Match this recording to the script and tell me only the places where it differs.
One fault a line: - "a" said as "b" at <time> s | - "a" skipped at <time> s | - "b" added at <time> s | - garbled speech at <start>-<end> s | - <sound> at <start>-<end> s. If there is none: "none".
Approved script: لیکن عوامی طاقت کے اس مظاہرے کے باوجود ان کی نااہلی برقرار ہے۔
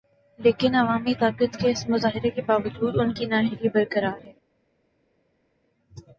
none